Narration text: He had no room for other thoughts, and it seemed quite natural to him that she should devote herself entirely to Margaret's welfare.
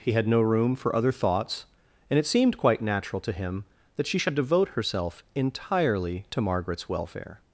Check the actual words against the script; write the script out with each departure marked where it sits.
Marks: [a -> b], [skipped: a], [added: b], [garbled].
He had no room for other thoughts, and it seemed quite natural to him that she should devote herself entirely to Margaret's welfare.